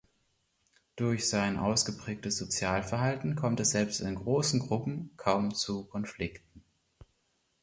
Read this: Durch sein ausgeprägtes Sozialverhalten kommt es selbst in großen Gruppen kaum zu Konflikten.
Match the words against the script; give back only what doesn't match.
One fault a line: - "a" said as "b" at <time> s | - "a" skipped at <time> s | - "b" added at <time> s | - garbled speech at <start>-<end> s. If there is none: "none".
none